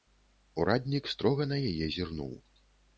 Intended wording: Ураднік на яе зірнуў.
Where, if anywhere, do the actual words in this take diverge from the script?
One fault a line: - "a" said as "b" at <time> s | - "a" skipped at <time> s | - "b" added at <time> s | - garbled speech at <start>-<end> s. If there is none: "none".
- "строга" added at 1.1 s